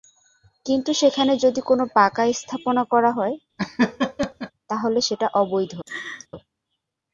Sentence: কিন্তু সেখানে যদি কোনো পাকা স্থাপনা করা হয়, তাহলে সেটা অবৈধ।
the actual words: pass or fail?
pass